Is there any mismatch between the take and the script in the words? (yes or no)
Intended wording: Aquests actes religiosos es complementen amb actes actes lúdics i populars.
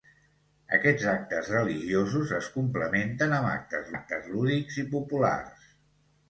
no